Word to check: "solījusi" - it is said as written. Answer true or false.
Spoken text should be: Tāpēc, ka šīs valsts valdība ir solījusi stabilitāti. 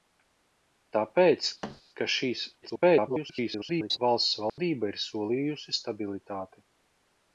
true